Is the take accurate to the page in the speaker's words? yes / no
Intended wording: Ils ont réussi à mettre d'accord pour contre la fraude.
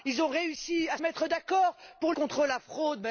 yes